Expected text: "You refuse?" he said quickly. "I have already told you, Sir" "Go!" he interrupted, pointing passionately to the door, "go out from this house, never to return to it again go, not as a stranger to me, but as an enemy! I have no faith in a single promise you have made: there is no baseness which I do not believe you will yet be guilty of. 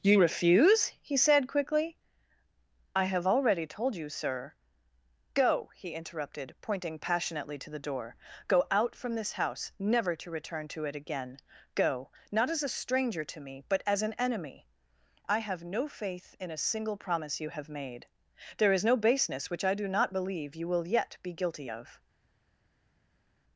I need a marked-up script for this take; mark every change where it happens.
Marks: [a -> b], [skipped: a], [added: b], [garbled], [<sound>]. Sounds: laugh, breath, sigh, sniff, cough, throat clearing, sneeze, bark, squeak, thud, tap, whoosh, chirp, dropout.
"You refuse?" he said quickly. "I have already told you, Sir" "Go!" he interrupted, pointing passionately to the door, "go out from this house, never to return to it again go, not as a stranger to me, but as an enemy! I have no faith in a single promise you have made: there is no baseness which I do not believe you will yet be guilty of.